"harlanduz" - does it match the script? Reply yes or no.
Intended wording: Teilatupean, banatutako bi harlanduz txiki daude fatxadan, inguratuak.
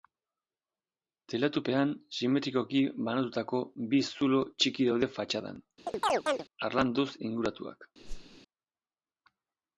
no